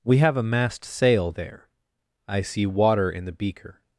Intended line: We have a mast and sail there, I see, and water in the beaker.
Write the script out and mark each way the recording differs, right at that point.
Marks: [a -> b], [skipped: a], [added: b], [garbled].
We have a mast [skipped: and] sail there, I see, [skipped: and] water in the beaker.